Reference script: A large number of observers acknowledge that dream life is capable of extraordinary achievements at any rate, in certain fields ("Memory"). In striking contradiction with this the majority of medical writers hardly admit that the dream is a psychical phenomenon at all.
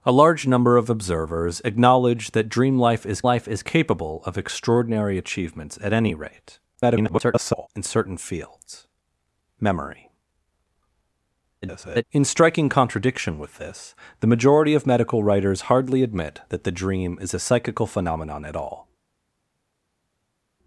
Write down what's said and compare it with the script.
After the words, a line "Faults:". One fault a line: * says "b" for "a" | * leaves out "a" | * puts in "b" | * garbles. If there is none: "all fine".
A large number of observers acknowledge that dream life is life is capable of extraordinary achievements at any rate, [garbled] in certain fields ("Memory"). [garbled] In striking contradiction with this the majority of medical writers hardly admit that the dream is a psychical phenomenon at all.
Faults:
* puts in "life is"
* garbles
* garbles